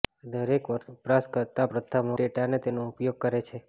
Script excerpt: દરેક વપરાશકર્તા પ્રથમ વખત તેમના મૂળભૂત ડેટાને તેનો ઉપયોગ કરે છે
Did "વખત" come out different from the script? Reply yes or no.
yes